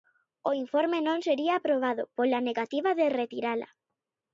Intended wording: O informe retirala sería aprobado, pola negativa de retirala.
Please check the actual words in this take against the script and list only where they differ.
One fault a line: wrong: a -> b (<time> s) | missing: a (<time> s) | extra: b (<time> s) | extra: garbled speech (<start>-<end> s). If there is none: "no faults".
wrong: retirala -> non (1.1 s)